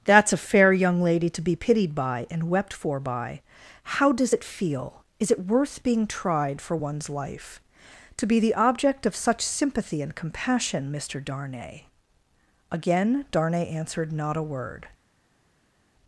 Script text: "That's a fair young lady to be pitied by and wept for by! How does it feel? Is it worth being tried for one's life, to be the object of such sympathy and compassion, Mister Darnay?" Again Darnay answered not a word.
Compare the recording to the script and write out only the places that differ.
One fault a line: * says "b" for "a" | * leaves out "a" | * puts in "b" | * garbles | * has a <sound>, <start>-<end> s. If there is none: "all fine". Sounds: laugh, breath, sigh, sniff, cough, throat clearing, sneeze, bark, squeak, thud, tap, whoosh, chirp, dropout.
all fine